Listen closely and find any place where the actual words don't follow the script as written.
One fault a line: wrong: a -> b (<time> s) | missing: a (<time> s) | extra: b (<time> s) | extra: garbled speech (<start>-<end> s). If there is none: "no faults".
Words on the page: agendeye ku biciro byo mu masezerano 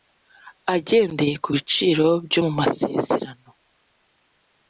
no faults